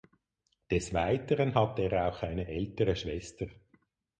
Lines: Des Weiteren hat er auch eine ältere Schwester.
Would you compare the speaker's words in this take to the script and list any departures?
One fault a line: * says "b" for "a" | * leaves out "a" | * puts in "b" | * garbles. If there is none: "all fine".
all fine